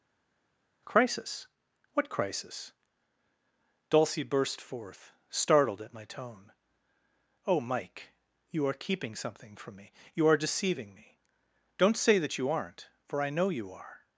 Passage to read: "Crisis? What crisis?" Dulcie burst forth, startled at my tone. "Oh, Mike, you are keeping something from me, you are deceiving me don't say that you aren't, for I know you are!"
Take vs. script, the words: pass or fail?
pass